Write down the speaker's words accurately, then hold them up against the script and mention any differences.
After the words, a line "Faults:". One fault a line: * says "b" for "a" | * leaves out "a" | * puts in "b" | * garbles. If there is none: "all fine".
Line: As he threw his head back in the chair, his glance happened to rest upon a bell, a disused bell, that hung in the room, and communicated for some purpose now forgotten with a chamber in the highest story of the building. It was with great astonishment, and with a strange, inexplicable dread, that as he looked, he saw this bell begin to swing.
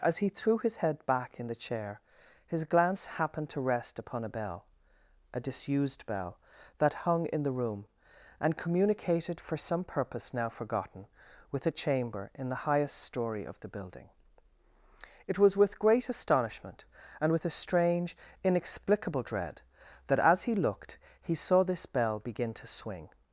As he threw his head back in the chair, his glance happened to rest upon a bell, a disused bell, that hung in the room, and communicated for some purpose now forgotten with a chamber in the highest story of the building. It was with great astonishment, and with a strange, inexplicable dread, that as he looked, he saw this bell begin to swing.
Faults:
all fine